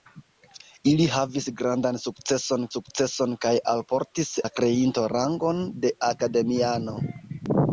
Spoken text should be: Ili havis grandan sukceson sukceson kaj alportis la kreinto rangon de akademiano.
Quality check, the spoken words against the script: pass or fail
pass